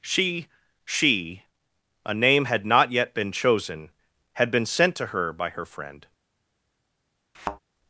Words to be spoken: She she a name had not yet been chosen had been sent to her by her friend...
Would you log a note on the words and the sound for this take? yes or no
yes